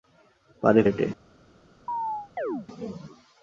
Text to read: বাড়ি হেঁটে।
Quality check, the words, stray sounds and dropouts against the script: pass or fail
fail